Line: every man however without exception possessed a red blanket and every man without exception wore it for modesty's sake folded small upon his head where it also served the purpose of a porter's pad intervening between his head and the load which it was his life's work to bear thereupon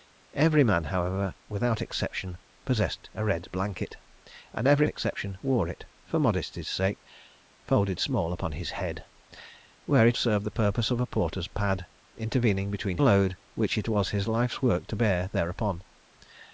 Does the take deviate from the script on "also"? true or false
true